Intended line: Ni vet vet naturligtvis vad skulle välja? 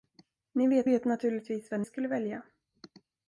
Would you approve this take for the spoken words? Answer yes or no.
yes